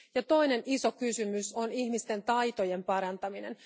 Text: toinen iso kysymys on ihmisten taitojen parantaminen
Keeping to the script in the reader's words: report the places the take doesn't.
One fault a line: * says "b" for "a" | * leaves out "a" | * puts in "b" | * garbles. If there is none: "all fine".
all fine